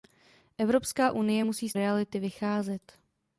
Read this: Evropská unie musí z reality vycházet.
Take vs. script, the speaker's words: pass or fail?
pass